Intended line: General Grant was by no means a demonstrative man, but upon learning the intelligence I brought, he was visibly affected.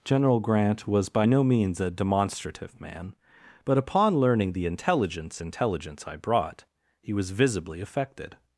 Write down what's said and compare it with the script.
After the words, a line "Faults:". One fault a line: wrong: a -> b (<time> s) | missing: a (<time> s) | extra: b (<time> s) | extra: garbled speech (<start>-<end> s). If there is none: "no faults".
General Grant was by no means a demonstrative man, but upon learning the intelligence intelligence I brought, he was visibly affected.
Faults:
extra: intelligence (5.4 s)